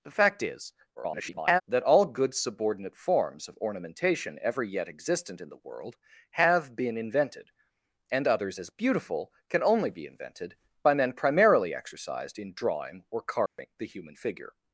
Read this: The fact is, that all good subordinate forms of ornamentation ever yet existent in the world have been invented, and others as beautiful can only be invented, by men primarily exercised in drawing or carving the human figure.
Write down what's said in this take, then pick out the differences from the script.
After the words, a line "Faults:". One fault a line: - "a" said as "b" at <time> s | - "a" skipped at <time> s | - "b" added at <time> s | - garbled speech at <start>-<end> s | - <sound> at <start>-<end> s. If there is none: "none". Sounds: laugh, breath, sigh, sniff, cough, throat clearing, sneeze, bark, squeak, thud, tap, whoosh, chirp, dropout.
The fact is, [garbled] that all good subordinate forms of ornamentation ever yet existent in the world have been invented, and others as beautiful can only be invented, by men primarily exercised in drawing or carving the human figure.
Faults:
- garbled speech at 1.0-1.6 s
- dropout at 13.5-13.6 s